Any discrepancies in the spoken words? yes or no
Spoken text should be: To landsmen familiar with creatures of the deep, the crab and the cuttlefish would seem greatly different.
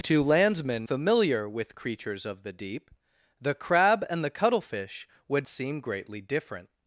no